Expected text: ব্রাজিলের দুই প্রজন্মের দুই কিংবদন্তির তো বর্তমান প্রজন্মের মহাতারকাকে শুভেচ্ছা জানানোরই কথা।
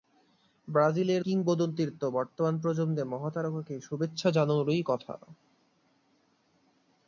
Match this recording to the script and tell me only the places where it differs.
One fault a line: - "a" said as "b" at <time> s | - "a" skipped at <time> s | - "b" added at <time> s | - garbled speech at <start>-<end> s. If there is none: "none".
- "দুই প্রজন্মের দুই" skipped at 1.2 s